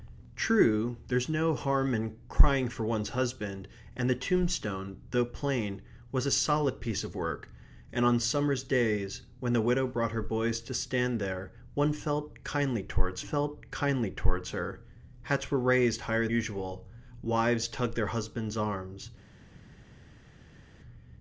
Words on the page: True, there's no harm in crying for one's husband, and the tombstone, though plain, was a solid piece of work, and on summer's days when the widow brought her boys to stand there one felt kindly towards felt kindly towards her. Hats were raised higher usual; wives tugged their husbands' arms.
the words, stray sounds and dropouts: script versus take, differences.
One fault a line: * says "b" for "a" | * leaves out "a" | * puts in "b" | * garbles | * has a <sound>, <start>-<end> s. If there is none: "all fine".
all fine